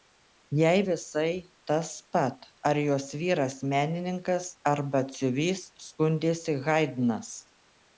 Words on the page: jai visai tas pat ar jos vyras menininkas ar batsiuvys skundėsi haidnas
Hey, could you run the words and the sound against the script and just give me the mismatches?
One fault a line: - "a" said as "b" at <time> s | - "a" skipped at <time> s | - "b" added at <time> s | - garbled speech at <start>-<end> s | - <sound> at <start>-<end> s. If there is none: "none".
none